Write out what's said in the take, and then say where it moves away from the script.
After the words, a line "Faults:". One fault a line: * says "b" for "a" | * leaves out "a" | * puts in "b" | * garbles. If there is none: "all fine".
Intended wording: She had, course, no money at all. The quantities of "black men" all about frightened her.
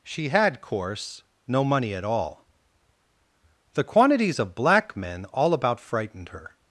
She had, course, no money at all. The quantities of "black men" all about frightened her.
Faults:
all fine